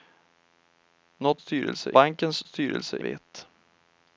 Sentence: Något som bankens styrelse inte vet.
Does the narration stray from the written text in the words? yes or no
yes